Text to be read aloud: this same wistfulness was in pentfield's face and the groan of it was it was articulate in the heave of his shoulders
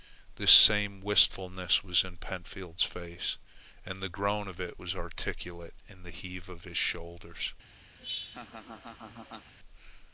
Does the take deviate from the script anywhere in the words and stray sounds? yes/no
yes